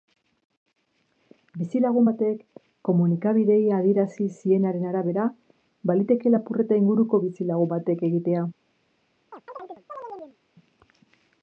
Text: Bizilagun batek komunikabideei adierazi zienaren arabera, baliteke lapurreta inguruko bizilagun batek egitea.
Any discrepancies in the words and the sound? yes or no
yes